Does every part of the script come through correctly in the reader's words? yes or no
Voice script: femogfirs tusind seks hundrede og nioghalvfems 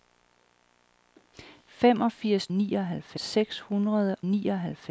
no